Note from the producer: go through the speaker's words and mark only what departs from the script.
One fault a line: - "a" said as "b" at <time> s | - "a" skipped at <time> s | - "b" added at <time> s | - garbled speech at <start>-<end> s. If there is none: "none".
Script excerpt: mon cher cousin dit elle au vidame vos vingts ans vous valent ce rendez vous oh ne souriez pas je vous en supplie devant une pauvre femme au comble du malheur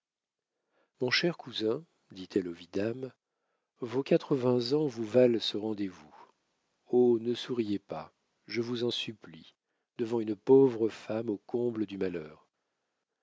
- "quatre" added at 4.0 s